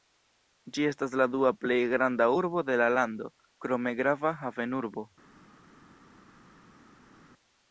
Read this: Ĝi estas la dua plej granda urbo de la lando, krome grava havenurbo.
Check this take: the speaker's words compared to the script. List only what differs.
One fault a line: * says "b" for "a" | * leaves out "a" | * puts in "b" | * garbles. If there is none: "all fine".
all fine